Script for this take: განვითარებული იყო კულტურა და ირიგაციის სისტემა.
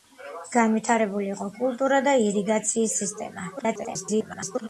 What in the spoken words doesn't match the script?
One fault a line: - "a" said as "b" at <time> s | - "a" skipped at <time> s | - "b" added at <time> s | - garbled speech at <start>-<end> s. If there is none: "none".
- garbled speech at 3.6-4.7 s